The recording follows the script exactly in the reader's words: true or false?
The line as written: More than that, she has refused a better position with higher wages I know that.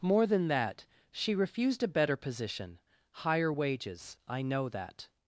false